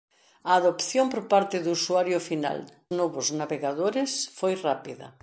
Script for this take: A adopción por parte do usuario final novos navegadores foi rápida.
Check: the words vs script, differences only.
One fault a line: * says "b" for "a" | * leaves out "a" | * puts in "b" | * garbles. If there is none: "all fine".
all fine